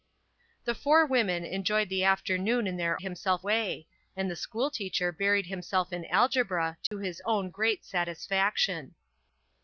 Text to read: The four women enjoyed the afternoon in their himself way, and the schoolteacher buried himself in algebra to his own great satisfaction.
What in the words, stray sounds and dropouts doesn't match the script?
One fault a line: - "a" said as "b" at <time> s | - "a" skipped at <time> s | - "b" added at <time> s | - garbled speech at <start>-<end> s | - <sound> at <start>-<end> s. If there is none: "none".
- dropout at 6.9-6.9 s